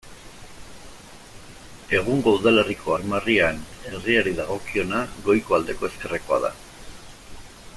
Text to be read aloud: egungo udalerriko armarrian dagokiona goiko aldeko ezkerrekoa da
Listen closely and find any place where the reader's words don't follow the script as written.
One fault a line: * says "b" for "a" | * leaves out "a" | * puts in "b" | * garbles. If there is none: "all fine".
* puts in "herriari"